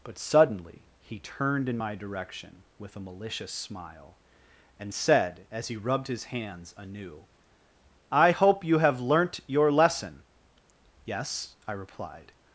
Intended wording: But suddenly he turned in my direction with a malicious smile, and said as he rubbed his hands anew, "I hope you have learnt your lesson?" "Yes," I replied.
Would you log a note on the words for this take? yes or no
no